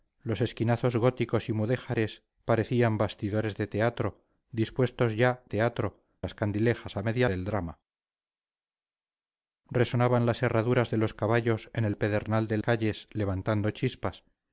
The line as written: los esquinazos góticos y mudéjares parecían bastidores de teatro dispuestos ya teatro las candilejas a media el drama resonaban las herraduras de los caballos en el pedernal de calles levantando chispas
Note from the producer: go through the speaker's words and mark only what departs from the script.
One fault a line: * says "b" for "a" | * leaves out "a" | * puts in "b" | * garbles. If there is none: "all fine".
all fine